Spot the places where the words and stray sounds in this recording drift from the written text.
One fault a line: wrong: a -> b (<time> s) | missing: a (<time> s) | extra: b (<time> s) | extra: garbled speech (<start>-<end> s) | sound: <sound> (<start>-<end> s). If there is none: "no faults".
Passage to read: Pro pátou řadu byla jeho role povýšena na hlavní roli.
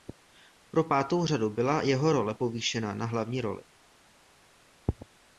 no faults